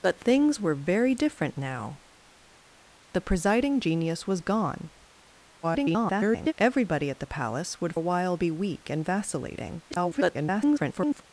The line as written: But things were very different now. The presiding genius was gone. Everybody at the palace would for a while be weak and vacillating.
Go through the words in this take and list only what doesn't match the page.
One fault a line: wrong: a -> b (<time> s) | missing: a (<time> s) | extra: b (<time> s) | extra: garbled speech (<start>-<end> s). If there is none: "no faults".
extra: garbled speech (5.6-6.5 s)
missing: for (7.9 s)
extra: garbled speech (9.9-11.2 s)